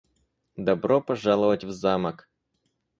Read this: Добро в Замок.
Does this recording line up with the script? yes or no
no